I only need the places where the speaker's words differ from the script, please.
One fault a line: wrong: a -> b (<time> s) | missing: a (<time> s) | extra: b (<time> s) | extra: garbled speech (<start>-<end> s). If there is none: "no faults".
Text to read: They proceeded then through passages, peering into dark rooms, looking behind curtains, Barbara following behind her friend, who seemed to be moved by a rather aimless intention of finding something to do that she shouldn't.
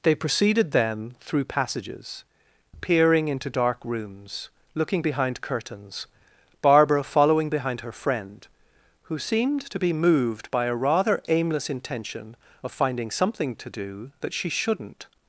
no faults